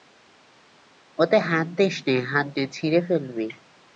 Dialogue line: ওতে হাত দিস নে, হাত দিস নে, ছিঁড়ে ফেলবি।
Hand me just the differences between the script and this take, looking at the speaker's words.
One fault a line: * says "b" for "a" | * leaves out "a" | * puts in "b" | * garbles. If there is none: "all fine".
* leaves out "দিস"